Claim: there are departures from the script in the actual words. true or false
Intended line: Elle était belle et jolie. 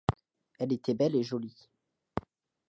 false